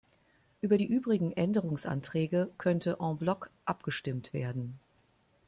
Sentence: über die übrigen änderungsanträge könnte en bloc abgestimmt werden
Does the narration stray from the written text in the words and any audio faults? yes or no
no